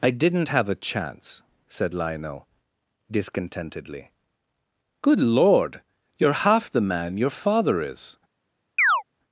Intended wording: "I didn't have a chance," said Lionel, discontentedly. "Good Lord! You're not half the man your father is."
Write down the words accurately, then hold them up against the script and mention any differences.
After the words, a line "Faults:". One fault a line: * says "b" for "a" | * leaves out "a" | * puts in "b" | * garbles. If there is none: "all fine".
"I didn't have a chance," said Lionel, discontentedly. "Good Lord! You're half the man your father is."
Faults:
* leaves out "not"